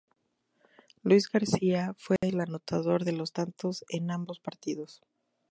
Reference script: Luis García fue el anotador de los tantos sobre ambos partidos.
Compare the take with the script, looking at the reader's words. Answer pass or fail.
fail